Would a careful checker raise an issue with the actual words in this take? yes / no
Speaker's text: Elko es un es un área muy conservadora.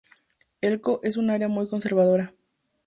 yes